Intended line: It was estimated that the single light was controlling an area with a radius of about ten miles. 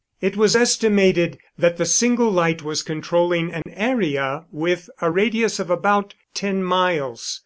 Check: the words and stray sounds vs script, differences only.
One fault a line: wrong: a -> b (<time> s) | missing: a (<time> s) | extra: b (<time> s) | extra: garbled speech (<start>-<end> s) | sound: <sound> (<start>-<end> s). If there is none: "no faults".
sound: dropout (3.6-3.7 s)